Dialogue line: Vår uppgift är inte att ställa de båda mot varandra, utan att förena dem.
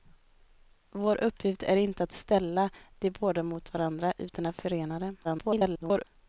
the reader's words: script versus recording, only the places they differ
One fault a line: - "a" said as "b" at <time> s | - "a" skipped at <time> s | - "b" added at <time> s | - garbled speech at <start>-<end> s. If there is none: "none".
- garbled speech at 5.2-6.0 s